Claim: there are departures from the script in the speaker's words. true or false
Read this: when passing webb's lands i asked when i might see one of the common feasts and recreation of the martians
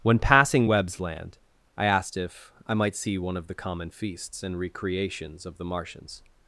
true